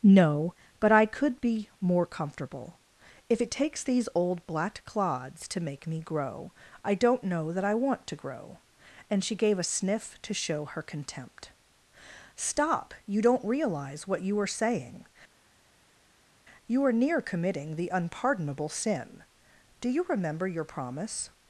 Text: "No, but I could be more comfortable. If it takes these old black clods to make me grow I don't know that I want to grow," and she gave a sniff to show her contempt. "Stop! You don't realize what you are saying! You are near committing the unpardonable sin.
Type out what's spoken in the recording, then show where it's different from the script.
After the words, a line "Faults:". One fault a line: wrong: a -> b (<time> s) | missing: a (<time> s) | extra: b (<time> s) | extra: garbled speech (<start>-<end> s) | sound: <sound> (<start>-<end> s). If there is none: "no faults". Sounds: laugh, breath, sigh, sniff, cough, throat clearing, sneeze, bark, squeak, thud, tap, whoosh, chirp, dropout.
"No, but I could be more comfortable. If it takes these old black clods to make me grow I don't know that I want to grow," and she gave a sniff to show her contempt. "Stop! You don't realize what you are saying! You are near committing the unpardonable sin. Do you remember your promise
Faults:
extra: Do you remember your promise (19.8 s)